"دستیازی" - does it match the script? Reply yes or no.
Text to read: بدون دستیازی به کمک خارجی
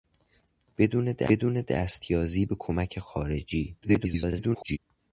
yes